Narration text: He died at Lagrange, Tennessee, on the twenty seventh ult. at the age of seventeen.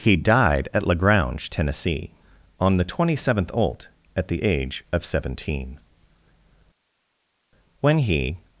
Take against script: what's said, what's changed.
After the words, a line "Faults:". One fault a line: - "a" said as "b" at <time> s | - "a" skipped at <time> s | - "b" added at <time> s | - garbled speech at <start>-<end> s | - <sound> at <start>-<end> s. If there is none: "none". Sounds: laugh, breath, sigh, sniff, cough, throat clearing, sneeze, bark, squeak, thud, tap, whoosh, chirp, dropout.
He died at Lagrange, Tennessee, on the twenty seventh ult. at the age of seventeen. When he
Faults:
- "When he" added at 7.8 s